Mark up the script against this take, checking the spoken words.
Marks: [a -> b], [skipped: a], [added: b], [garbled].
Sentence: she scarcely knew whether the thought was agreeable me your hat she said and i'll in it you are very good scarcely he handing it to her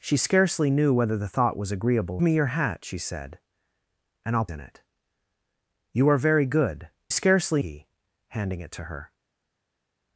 she scarcely knew whether the thought was agreeable me your hat she said and i'll in it you are very good scarcely he handing it to her